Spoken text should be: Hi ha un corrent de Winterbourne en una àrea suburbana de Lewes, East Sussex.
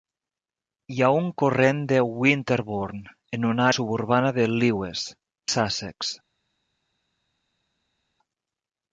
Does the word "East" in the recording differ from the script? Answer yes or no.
yes